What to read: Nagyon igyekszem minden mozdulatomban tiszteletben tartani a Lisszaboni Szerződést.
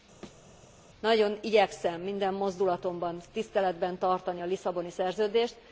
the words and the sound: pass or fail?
fail